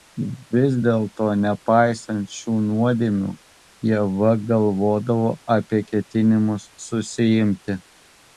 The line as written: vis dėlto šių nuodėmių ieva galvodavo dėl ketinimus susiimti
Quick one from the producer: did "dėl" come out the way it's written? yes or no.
no